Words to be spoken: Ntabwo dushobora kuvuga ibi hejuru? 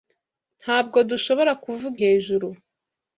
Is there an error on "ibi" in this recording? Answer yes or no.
yes